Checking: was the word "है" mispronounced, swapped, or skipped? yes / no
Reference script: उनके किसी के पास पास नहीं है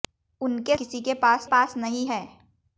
no